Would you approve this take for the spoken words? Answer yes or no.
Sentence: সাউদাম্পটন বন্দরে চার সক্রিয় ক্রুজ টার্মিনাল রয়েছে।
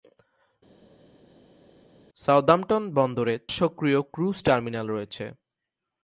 no